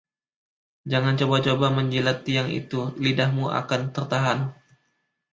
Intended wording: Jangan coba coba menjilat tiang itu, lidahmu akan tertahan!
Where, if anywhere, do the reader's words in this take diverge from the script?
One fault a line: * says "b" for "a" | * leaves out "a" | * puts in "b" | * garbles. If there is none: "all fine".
all fine